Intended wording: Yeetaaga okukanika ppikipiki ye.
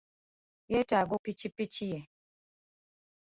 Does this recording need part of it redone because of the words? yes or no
yes